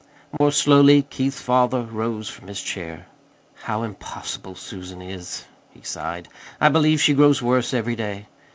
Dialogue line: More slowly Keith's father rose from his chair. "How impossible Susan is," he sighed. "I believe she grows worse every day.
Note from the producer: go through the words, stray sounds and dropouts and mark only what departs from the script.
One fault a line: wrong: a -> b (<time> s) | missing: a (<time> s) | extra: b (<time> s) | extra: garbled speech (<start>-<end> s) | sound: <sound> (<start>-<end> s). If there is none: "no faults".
sound: dropout (0.4-0.4 s)